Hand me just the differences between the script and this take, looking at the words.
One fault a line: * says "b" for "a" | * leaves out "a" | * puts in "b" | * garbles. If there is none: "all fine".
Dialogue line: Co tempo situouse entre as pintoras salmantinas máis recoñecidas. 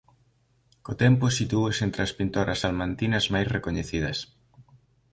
all fine